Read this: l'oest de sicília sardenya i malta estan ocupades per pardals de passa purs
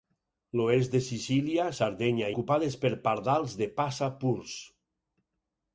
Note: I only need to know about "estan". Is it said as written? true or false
false